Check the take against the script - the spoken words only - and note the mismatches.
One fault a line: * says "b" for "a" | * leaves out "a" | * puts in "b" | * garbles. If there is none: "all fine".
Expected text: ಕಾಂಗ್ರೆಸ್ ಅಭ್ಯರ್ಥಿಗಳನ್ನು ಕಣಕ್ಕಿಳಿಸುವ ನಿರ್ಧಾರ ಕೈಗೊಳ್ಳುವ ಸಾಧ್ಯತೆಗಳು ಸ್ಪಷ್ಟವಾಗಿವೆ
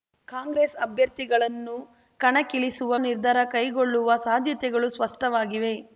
all fine